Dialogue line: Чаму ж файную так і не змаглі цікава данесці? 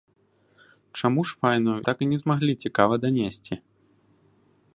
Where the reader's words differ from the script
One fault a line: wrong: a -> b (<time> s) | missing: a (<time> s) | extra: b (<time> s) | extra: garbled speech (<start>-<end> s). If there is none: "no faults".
no faults